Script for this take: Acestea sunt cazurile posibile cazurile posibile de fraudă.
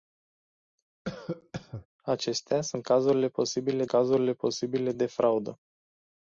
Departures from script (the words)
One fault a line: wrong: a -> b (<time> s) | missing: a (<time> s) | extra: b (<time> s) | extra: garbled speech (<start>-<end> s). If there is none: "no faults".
no faults